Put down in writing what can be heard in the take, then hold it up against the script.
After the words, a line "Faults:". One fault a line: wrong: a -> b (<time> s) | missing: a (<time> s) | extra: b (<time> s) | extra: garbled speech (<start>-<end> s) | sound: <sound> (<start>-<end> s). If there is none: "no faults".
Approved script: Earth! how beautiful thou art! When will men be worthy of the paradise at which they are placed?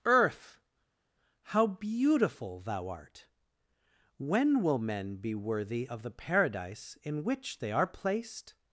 Earth! how beautiful thou art! When will men be worthy of the paradise in which they are placed?
Faults:
wrong: at -> in (7.0 s)